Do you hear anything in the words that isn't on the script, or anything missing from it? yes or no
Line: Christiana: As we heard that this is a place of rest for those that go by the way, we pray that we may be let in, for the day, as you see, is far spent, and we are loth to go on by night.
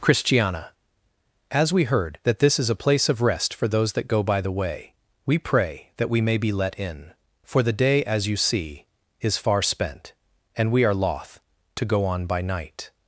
no